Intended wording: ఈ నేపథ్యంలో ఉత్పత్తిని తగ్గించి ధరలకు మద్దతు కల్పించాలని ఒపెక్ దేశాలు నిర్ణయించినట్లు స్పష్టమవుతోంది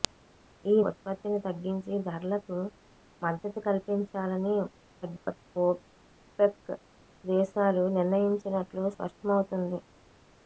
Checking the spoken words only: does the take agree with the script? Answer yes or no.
no